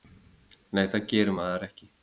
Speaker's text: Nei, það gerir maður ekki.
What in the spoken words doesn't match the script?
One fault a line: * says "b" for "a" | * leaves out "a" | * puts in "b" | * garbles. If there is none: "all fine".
all fine